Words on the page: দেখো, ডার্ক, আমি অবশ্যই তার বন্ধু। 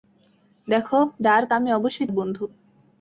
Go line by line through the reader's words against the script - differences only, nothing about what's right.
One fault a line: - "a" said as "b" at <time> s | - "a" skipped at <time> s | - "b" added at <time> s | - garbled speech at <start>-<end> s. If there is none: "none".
- "তার" skipped at 2.1 s